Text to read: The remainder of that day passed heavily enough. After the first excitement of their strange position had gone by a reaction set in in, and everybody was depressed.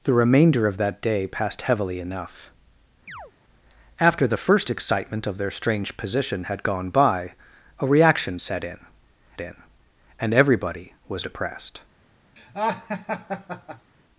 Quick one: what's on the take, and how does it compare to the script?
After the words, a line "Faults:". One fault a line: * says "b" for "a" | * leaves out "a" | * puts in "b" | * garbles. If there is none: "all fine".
The remainder of that day passed heavily enough. After the first excitement of their strange position had gone by a reaction set in in, and everybody was depressed.
Faults:
all fine